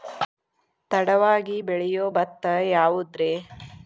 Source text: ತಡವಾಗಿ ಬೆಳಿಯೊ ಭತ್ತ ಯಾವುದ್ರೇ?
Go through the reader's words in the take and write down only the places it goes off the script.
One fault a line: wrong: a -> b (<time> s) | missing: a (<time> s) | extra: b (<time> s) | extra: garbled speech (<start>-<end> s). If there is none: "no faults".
no faults